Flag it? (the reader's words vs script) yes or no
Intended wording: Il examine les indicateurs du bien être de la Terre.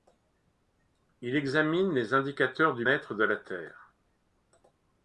yes